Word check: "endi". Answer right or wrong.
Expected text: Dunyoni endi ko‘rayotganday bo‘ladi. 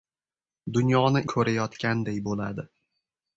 wrong